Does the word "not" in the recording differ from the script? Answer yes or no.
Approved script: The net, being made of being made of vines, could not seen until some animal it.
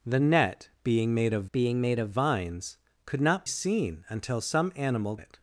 no